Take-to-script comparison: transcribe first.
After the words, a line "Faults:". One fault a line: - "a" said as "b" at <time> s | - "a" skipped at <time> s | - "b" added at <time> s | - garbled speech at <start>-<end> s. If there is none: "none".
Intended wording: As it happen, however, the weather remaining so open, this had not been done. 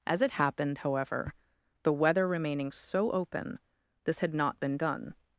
As it happened, however, the weather remaining so open, this had not been done.
Faults:
- "happen" said as "happened" at 0.3 s